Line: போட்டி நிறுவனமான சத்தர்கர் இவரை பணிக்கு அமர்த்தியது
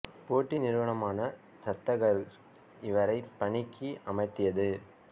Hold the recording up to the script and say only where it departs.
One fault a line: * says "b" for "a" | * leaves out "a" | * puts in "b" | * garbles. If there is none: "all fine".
all fine